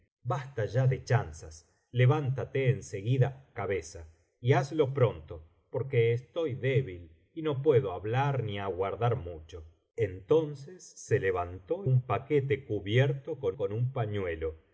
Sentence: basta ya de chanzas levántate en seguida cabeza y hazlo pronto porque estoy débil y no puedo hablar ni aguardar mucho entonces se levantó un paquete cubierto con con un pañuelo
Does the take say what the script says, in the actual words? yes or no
yes